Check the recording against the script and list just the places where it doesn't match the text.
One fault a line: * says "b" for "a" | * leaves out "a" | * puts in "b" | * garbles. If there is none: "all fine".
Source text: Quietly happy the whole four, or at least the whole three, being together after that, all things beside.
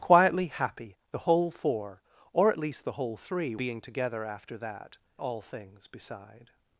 all fine